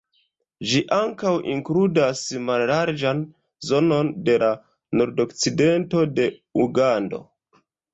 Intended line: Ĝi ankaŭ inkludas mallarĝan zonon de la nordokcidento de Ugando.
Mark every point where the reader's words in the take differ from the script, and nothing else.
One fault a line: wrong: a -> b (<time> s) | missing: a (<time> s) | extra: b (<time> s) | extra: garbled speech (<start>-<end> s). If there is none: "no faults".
no faults